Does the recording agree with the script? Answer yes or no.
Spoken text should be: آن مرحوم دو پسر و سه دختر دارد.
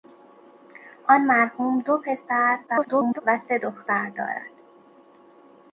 no